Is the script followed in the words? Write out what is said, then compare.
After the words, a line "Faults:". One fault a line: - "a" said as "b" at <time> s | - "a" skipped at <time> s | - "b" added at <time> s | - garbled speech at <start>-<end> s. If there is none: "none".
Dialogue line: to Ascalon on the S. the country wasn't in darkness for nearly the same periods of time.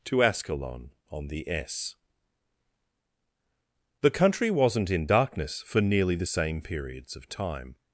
to Ascalon on the S. the country wasn't in darkness for nearly the same periods of time.
Faults:
none